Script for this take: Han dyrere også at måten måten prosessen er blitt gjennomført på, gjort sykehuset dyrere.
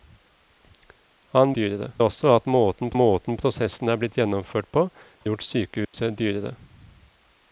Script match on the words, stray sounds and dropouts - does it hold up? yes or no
no